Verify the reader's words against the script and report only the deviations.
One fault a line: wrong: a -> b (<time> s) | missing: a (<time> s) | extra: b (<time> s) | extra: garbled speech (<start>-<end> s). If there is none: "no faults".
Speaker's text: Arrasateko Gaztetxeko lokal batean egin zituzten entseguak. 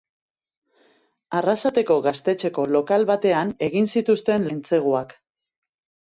no faults